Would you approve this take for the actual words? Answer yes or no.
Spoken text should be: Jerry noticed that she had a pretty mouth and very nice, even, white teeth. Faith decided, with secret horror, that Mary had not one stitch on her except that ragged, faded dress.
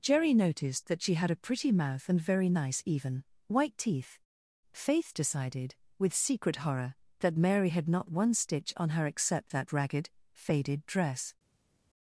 yes